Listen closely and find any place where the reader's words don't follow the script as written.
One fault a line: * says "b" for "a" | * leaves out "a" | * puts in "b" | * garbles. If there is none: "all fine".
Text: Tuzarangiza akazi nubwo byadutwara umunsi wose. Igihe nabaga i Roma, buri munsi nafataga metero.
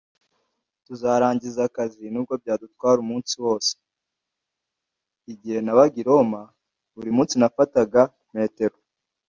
all fine